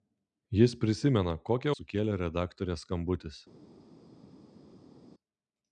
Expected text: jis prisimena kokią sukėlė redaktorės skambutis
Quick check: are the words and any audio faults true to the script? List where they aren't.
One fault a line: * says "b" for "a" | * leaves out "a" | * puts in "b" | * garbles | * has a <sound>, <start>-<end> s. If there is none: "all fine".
all fine